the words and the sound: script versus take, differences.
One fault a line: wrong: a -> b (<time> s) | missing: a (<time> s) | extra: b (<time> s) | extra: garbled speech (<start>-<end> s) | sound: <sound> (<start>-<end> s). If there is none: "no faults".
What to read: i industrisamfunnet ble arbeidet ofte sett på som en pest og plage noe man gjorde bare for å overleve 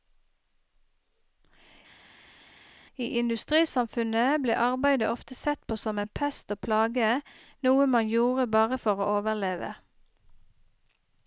no faults